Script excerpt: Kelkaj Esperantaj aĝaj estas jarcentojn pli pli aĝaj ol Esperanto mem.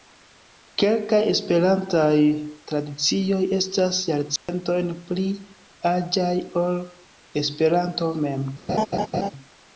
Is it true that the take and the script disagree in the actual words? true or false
true